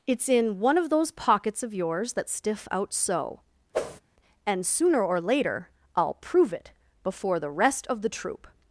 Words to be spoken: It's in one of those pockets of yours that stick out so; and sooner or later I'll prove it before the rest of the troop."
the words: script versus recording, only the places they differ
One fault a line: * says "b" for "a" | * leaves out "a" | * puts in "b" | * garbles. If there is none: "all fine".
* says "stiff" for "stick"